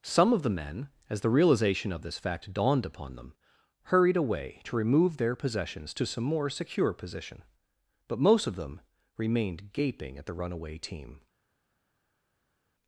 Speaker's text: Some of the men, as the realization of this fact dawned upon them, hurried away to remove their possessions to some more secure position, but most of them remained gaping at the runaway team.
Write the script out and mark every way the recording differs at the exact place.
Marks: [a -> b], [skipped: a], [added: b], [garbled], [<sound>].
Some of the men, as the realization of this fact dawned upon them, hurried away to remove their possessions to some more secure position, but most of them remained gaping at the runaway team.